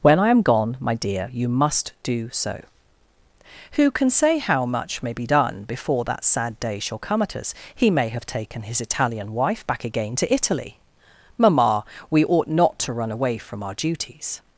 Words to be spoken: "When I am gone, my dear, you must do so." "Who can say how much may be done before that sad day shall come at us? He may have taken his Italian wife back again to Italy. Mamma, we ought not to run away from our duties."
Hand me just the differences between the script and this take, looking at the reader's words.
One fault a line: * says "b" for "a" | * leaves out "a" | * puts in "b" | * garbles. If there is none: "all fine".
all fine